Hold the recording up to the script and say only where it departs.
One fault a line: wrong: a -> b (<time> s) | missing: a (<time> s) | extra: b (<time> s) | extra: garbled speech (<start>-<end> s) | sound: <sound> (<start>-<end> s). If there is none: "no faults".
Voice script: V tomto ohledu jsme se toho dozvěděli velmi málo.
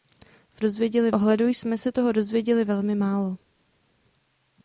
wrong: tomto -> dozvěděli (0.6 s)